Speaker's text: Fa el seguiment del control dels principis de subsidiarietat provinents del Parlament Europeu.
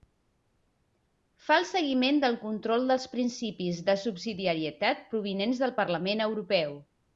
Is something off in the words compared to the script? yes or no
no